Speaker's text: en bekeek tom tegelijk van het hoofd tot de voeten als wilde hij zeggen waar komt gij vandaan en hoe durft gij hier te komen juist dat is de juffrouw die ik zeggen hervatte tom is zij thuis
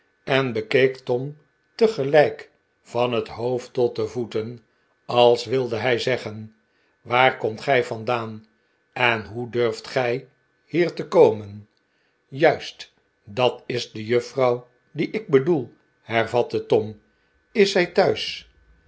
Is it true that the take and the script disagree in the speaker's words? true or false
true